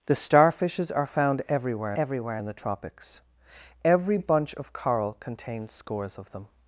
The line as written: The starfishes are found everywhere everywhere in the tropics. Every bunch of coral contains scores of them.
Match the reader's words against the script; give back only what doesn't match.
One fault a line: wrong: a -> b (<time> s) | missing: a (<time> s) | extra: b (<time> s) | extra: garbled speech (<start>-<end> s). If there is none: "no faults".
no faults